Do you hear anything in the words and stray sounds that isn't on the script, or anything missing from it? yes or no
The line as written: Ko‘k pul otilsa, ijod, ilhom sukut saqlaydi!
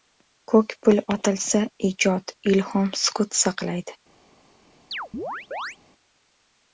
yes